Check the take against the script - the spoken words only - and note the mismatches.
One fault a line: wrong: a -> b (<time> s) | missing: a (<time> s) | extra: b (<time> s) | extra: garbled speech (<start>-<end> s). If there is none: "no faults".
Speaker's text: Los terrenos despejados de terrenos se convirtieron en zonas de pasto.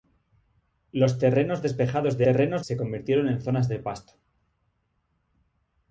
no faults